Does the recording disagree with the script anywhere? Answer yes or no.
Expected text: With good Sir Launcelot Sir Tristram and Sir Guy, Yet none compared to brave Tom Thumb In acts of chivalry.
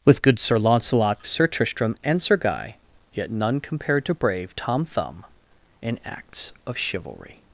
no